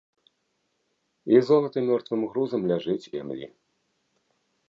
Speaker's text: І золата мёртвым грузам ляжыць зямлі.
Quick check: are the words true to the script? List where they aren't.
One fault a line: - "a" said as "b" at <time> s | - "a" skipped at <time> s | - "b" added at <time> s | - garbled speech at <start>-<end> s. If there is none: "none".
none